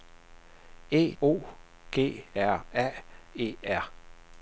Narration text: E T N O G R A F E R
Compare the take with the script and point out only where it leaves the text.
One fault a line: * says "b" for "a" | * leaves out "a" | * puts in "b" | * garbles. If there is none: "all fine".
* leaves out "T N"
* leaves out "F"